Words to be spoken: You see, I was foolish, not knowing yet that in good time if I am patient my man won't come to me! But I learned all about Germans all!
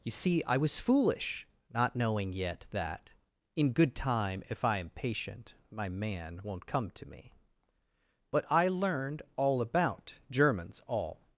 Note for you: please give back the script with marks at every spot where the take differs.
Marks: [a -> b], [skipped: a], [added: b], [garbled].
You see, I was foolish, not knowing yet that in good time if I am patient my man won't come to me! But I learned all about Germans all!